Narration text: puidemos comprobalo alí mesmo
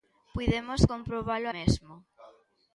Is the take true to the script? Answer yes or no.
no